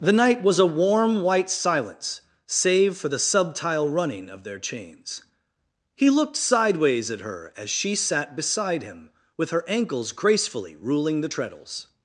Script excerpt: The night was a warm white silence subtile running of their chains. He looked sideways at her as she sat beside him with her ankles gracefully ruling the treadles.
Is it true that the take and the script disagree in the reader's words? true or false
true